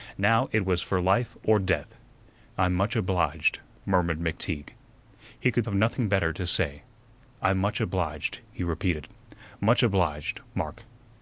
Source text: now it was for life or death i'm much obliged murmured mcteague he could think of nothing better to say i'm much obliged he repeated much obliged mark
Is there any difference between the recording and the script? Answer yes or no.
yes